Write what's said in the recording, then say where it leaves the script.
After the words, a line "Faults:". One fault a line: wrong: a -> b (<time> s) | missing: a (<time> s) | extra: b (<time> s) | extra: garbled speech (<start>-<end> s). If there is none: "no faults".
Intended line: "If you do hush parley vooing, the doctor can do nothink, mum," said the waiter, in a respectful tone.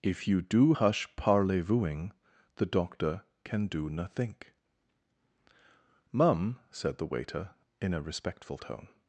"If you do hush parley vooing, the doctor can do nothink, mum," said the waiter, in a respectful tone.
Faults:
no faults